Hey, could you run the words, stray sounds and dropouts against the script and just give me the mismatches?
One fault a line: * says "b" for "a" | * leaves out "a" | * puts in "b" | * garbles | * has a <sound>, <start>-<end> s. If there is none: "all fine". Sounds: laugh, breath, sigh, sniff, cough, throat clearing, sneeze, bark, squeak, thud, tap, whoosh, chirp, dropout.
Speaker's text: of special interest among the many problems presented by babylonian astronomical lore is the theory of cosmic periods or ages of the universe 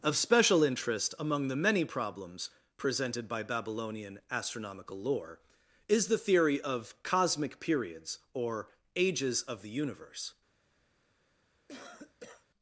* has a cough, 11.7-12.5 s